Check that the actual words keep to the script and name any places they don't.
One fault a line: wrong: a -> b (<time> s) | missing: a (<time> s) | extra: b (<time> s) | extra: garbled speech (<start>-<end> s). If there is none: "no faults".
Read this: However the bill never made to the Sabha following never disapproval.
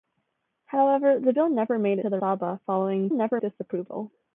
no faults